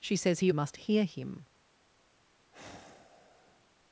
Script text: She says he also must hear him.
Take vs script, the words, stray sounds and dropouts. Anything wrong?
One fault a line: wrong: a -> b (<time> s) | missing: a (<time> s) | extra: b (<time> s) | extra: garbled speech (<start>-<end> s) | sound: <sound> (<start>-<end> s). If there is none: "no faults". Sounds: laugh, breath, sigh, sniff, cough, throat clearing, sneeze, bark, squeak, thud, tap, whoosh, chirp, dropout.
missing: also (0.5 s)
sound: sigh (2.5-3.7 s)